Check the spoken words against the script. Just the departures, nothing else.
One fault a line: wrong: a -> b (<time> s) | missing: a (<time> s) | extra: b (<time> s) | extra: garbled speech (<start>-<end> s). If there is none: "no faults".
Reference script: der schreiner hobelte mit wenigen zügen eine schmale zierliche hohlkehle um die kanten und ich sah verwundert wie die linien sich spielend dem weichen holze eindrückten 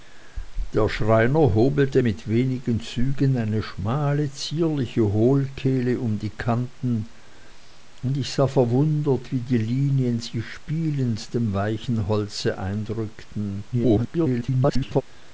extra: garbled speech (13.7-15.0 s)